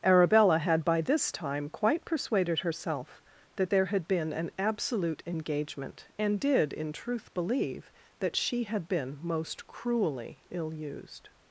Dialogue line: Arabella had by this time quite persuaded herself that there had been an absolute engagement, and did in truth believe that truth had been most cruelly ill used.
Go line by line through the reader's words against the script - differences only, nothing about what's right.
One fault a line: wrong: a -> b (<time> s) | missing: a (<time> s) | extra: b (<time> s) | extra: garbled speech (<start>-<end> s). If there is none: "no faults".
wrong: truth -> she (8.4 s)